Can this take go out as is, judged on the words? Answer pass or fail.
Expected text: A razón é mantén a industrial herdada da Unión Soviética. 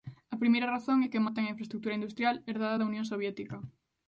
fail